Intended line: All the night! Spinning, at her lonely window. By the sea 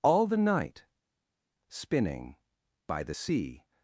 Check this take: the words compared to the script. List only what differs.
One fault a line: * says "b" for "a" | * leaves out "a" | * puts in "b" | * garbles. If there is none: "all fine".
* leaves out "at her lonely window"